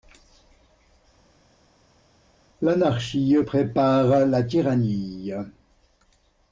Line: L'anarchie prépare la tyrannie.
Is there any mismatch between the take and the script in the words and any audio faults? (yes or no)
no